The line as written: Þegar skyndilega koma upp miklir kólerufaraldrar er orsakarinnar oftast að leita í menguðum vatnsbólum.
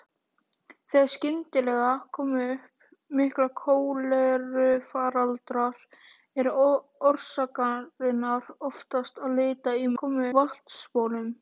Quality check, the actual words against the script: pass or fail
fail